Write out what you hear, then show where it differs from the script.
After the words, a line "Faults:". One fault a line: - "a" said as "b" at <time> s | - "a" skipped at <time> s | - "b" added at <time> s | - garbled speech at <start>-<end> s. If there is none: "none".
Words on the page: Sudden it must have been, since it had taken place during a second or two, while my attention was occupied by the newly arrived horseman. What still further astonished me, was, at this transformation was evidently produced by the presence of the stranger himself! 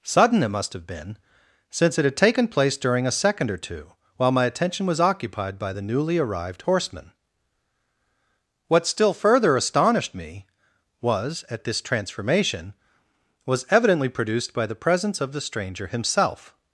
Sudden it must have been, since it had taken place during a second or two, while my attention was occupied by the newly arrived horseman. What still further astonished me, was, at this transformation was evidently produced by the presence of the stranger himself!
Faults:
none